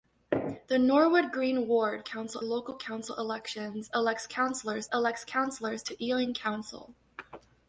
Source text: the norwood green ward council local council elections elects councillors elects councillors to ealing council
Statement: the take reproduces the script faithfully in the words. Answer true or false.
true